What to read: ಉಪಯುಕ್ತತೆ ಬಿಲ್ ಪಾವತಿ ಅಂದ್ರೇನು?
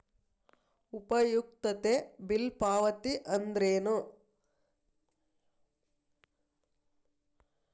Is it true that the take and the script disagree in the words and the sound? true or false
false